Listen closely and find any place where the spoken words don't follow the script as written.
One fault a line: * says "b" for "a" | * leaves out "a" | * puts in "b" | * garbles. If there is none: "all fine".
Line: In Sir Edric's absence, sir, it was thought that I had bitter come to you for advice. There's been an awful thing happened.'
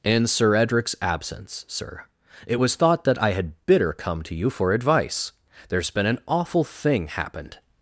all fine